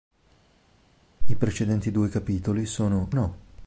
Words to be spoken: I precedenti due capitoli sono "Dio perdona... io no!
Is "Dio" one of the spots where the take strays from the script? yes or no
yes